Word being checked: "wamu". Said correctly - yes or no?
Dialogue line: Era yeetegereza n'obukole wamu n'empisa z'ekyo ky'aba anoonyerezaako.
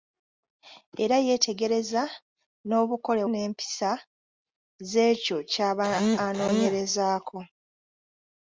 no